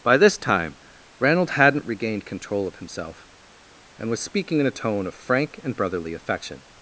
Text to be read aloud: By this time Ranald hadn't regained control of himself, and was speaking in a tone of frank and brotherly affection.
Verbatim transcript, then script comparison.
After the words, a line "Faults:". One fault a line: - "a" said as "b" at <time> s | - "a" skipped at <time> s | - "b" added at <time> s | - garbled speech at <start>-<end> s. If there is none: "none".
By this time Ranald hadn't regained control of himself, and was speaking in a tone of frank and brotherly affection.
Faults:
none